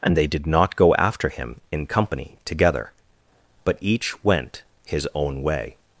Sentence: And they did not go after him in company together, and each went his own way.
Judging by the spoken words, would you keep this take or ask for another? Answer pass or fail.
fail